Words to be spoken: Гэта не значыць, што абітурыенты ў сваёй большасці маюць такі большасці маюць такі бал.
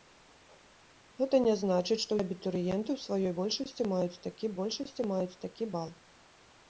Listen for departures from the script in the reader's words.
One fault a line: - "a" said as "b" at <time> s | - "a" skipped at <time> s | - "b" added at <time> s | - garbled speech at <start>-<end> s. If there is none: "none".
none